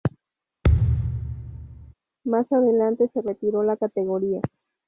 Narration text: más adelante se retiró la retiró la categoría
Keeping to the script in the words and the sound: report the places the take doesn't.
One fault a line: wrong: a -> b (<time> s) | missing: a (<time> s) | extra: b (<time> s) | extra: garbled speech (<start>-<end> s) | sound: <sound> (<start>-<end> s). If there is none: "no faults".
sound: thud (0.6-1.9 s)
missing: retiró la (3.8 s)